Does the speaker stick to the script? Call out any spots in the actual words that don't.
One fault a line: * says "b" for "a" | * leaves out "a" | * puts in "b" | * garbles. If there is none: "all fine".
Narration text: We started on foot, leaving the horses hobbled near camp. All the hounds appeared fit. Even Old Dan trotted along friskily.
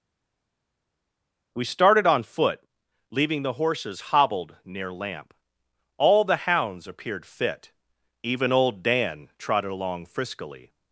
* says "lamp" for "camp"